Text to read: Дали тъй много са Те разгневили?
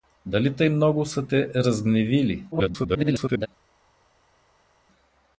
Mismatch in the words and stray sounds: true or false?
true